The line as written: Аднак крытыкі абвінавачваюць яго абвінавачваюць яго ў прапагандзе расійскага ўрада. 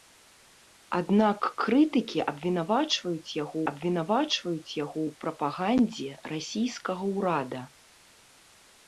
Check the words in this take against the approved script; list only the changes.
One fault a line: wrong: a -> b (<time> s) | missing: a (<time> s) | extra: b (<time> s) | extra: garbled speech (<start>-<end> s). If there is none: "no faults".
no faults